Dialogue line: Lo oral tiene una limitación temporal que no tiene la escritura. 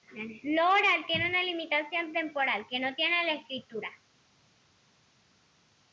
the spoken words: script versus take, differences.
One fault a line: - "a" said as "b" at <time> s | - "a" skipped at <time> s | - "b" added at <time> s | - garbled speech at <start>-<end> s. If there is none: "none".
none